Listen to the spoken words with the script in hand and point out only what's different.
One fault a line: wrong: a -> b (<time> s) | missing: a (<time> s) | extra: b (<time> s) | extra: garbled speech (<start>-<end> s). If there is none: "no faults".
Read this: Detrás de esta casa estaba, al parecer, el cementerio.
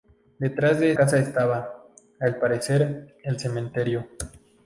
missing: esta (0.9 s)